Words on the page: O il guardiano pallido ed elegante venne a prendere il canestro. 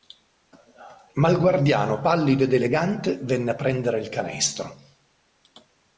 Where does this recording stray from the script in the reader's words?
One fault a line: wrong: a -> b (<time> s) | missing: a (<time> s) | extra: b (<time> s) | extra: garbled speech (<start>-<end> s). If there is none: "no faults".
wrong: O -> Ma (1.1 s)